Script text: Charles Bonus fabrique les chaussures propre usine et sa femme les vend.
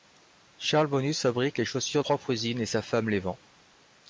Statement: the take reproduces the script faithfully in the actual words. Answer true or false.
true